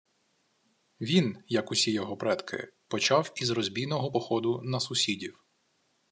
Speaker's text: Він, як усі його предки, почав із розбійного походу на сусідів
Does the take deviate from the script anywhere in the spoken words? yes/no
no